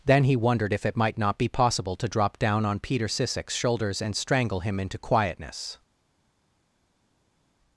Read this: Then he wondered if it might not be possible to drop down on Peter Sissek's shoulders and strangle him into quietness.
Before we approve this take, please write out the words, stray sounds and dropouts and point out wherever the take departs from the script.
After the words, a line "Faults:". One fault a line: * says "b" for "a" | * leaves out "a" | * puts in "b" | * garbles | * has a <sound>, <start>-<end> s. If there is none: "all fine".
Then he wondered if it might not be possible to drop down on Peter Sissek's shoulders and strangle him into quietness.
Faults:
all fine